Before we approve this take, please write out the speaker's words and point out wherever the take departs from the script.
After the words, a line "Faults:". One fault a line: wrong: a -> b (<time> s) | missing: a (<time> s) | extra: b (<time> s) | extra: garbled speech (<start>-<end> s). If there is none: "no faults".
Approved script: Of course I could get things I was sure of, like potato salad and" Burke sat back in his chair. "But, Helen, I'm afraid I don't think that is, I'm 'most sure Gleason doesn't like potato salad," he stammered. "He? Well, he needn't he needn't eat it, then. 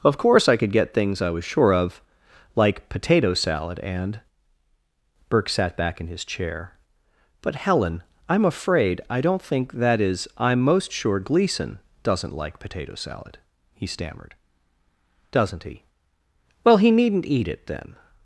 Of course I could get things I was sure of, like potato salad and" Burke sat back in his chair. "But, Helen, I'm afraid I don't think that is, I'm 'most sure Gleason doesn't like potato salad," he stammered. "Doesn't he? Well, he needn't eat it, then.
Faults:
extra: Doesn't (15.3 s)
missing: he needn't (17.3 s)